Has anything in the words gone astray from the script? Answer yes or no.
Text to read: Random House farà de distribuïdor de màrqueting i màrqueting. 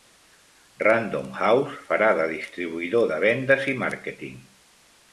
yes